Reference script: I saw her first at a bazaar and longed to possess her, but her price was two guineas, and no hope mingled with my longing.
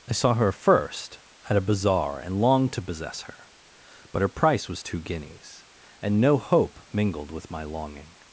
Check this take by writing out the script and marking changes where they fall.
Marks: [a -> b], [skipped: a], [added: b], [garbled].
I saw her first at a bazaar and longed to possess her, but her price was two guineas, and no hope mingled with my longing.